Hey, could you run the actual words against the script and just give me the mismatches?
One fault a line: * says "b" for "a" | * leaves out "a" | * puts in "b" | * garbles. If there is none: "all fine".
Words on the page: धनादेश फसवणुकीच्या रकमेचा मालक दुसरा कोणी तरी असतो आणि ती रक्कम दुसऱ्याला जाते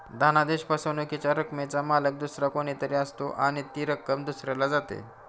all fine